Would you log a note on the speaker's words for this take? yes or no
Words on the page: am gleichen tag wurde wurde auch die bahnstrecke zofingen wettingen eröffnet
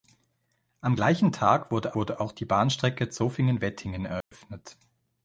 no